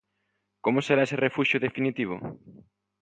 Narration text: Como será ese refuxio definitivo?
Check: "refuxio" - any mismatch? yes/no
no